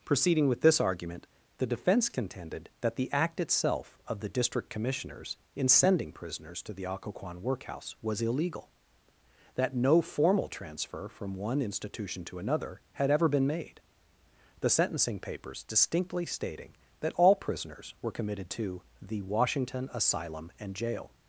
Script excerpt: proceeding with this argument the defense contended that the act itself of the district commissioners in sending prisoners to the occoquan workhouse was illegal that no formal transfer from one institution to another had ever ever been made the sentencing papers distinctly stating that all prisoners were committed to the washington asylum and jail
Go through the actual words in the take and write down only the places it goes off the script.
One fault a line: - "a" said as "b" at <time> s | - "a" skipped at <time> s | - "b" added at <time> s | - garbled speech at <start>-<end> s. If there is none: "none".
- "ever" skipped at 13.3 s